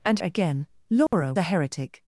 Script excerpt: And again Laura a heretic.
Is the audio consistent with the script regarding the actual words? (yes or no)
yes